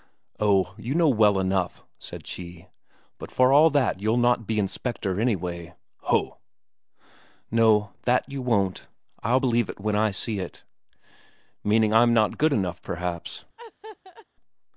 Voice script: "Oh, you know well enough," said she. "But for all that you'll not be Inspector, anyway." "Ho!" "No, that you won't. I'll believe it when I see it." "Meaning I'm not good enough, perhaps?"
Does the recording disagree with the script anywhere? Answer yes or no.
no